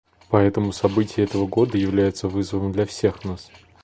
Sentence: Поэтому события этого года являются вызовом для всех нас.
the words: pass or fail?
pass